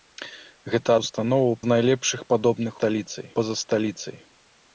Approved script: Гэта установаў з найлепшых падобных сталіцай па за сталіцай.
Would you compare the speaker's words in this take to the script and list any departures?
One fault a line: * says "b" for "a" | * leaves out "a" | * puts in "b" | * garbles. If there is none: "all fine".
all fine